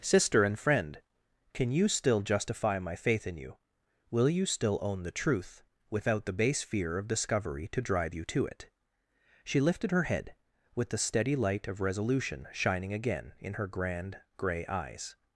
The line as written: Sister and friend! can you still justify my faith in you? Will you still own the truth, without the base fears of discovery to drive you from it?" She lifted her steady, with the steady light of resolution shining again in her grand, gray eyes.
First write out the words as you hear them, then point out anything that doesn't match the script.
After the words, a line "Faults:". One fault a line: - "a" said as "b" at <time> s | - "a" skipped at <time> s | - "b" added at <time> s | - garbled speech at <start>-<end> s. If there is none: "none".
Sister and friend! can you still justify my faith in you? Will you still own the truth, without the base fear of discovery to drive you to it?" She lifted her head, with the steady light of resolution shining again in her grand, gray eyes.
Faults:
- "fears" said as "fear" at 6.6 s
- "from" said as "to" at 8.2 s
- "steady" said as "head" at 10.1 s